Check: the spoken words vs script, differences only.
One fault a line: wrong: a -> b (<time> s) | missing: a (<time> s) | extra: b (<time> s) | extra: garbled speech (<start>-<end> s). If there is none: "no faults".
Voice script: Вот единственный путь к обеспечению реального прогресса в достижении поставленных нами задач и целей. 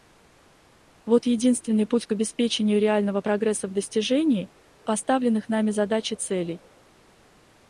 no faults